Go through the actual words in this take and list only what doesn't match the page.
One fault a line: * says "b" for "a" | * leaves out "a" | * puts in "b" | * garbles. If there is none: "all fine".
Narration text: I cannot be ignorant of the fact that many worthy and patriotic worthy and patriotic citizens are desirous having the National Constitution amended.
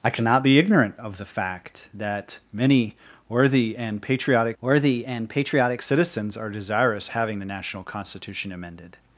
all fine